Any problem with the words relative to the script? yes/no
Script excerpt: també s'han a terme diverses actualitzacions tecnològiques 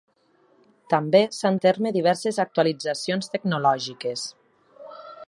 no